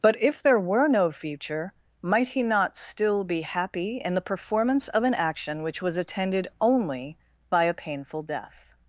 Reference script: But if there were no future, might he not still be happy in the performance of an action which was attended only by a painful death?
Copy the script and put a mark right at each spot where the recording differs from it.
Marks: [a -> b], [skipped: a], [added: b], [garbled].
But if there were no future, might he not still be happy in the performance of an action which was attended only by a painful death?